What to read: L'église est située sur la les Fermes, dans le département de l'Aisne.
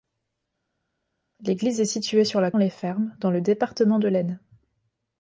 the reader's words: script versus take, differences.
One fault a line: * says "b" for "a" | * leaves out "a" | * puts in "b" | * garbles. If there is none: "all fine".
all fine